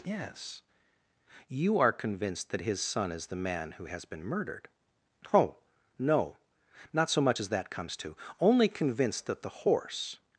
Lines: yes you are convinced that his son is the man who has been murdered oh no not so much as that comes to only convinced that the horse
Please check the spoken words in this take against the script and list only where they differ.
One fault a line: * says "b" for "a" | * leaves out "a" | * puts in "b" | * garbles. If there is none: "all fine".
all fine